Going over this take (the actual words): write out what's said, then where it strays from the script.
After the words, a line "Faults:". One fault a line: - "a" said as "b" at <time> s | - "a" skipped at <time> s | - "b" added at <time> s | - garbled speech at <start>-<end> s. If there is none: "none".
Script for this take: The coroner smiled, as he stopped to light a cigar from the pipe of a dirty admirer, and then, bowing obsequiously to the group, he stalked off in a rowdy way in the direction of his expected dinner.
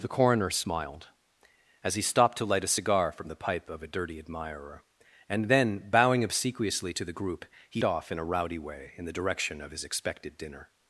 The coroner smiled, as he stopped to light a cigar from the pipe of a dirty admirer, and then, bowing obsequiously to the group, he off in a rowdy way in the direction of his expected dinner.
Faults:
- "stalked" skipped at 7.8 s